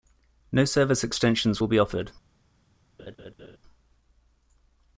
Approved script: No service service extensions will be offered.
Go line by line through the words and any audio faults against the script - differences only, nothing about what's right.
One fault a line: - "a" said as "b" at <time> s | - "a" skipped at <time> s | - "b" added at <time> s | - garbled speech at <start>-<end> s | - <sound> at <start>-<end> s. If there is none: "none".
- "service" skipped at 1.0 s
- laugh at 3.0-3.6 s